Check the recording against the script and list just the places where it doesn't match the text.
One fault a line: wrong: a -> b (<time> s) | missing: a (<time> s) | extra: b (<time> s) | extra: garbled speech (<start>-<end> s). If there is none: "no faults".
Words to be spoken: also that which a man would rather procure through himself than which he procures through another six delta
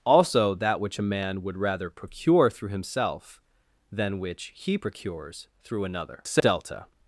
missing: six (6.2 s)